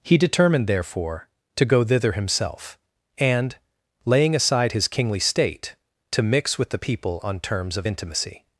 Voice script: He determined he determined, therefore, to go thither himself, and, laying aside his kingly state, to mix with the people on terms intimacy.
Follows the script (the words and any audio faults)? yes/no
no